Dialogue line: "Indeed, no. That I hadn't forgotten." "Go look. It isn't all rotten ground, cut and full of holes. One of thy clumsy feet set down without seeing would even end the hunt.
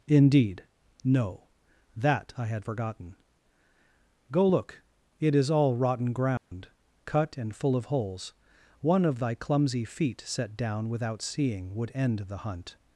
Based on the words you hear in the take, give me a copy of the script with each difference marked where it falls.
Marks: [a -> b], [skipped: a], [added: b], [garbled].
"Indeed, no. That I [hadn't -> had] forgotten." "Go look. It [isn't -> is] all rotten ground, cut and full of holes. One of thy clumsy feet set down without seeing would [skipped: even] end the hunt.